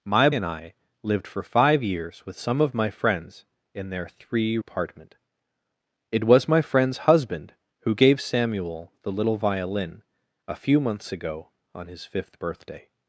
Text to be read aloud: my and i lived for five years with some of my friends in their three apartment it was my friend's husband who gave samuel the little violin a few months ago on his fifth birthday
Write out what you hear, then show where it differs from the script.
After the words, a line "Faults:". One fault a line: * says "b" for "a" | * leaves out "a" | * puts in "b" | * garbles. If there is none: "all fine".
my and i lived for five years with some of my friends in their three apartment it was my friend's husband who gave samuel the little violin a few months ago on his fifth birthday
Faults:
all fine